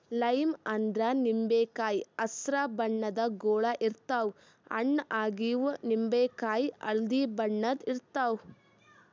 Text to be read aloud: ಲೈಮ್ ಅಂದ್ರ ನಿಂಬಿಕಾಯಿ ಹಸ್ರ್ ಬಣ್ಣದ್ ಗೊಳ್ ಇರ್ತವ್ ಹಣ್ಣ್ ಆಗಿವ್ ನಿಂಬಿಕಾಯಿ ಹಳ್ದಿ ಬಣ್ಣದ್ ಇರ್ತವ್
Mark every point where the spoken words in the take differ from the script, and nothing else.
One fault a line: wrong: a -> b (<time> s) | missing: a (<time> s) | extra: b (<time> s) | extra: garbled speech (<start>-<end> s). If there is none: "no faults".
no faults